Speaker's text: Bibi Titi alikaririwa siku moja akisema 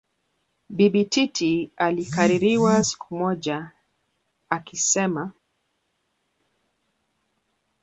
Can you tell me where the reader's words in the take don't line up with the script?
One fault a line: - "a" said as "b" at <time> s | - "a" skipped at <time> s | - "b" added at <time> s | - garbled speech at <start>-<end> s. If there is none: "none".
none